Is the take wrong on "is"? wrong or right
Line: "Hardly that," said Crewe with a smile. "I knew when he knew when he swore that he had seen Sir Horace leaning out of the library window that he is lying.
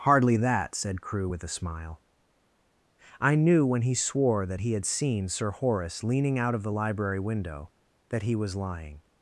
wrong